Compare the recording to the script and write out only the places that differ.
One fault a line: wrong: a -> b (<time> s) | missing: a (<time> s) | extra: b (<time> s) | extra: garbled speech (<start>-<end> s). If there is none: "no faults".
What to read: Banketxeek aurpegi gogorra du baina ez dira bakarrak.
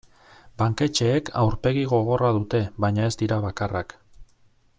wrong: du -> dute (2.4 s)